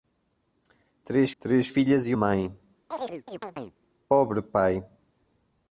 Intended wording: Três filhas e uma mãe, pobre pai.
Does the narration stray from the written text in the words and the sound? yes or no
yes